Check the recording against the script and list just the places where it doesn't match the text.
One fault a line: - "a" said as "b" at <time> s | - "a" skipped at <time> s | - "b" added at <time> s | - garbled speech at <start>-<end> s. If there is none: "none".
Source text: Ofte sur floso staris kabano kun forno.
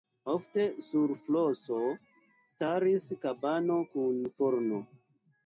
none